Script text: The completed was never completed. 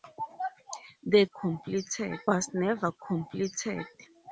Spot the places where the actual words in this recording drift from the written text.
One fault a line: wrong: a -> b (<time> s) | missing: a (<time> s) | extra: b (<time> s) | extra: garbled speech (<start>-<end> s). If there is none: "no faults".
no faults